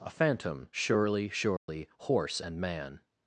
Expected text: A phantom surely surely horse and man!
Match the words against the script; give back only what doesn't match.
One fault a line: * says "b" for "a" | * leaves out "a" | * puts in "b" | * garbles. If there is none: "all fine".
all fine